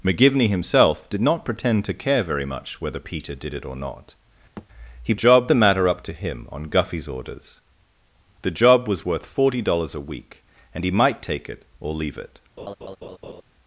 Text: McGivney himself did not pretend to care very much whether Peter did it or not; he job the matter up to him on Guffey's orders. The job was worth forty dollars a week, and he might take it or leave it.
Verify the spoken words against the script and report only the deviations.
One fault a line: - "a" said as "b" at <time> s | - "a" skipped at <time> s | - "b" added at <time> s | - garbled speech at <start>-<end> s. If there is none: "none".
none